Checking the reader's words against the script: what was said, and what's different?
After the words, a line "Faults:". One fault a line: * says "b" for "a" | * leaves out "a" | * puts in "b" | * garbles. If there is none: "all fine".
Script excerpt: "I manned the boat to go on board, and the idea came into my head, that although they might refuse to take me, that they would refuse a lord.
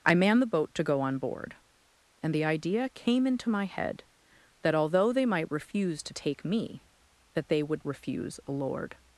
"I manned the boat to go on board, and the idea came into my head, that although they might refuse to take me, that they would refuse a lord.
Faults:
all fine